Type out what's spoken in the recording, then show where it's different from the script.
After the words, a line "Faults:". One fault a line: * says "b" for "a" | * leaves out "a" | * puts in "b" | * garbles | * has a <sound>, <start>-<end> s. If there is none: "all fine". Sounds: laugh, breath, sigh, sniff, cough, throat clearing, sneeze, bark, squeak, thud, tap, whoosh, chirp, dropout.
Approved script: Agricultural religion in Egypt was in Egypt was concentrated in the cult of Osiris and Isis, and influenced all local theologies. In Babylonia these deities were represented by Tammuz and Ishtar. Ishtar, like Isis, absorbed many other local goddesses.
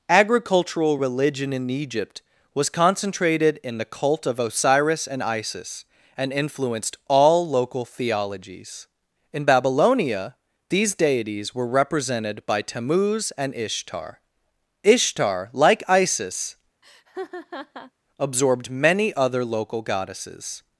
Agricultural religion in Egypt was concentrated in the cult of Osiris and Isis, and influenced all local theologies. In Babylonia these deities were represented by Tammuz and Ishtar. Ishtar, like Isis, absorbed many other local goddesses.
Faults:
* leaves out "in Egypt was"
* has a laugh, 16.8-17.9 s